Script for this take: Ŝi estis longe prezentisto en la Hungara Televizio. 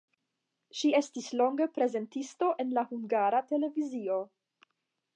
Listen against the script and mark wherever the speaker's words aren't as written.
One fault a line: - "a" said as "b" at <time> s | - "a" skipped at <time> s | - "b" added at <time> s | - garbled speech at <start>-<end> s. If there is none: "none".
none